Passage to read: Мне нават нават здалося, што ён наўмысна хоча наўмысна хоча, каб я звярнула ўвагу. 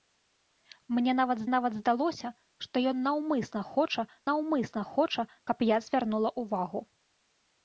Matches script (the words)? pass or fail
pass